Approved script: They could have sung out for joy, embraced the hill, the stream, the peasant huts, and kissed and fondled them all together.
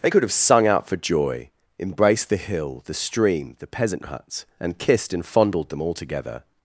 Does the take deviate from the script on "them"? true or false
false